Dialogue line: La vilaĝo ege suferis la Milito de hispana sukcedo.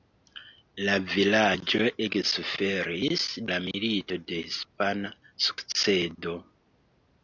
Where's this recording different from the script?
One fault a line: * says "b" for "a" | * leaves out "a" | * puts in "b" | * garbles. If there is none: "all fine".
all fine